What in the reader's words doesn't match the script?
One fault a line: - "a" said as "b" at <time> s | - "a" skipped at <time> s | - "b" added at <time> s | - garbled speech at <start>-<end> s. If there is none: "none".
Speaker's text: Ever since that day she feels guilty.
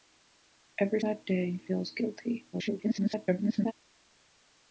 - "since" skipped at 1.0 s
- "she" skipped at 1.6 s
- garbled speech at 2.5-3.7 s